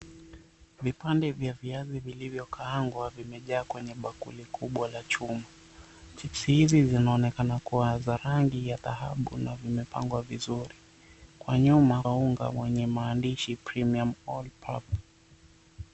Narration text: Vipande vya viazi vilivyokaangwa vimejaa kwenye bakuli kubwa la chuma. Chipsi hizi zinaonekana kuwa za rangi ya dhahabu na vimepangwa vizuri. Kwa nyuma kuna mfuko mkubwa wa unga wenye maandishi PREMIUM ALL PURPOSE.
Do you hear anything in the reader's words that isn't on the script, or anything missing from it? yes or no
yes